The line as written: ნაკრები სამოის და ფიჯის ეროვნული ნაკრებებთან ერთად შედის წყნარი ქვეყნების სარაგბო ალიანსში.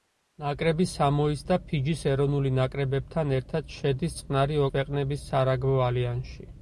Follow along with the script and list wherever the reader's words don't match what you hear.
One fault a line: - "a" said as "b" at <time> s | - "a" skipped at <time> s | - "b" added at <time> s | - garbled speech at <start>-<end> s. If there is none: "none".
none